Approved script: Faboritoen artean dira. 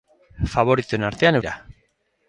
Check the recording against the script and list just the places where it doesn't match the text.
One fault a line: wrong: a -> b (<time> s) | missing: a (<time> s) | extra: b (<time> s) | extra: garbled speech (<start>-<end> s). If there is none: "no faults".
no faults